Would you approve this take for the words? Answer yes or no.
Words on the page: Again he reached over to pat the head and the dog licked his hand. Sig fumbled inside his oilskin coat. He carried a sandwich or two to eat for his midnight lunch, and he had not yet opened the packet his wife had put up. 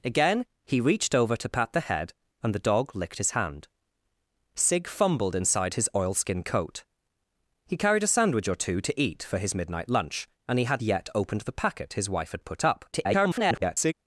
no